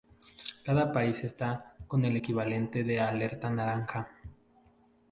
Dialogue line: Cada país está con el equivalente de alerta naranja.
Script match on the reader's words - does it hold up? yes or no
yes